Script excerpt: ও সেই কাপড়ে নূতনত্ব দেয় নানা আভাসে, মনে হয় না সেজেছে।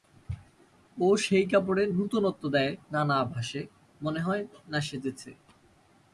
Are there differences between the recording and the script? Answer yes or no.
no